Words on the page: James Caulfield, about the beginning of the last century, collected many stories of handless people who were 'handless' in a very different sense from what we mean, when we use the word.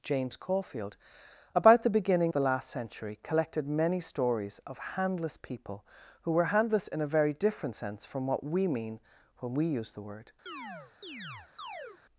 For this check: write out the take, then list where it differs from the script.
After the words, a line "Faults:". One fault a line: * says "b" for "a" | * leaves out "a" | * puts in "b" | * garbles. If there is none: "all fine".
James Caulfield, about the beginning the last century, collected many stories of handless people who were 'handless' in a very different sense from what we mean, when we use the word.
Faults:
* leaves out "of"